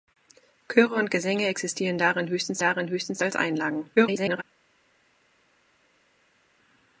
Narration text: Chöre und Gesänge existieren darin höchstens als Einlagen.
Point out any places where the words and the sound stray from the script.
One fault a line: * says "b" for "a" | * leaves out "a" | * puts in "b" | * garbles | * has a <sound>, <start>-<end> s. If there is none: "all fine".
* puts in "darin höchstens"
* garbles